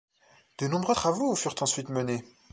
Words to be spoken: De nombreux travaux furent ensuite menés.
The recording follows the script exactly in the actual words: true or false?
true